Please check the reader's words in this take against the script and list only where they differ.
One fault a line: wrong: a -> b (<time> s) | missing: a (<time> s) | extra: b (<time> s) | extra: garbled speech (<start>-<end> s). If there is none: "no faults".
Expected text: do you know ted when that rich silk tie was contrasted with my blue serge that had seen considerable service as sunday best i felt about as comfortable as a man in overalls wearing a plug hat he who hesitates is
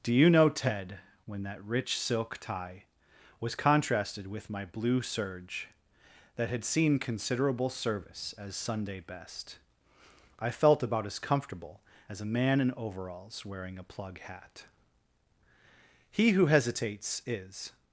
no faults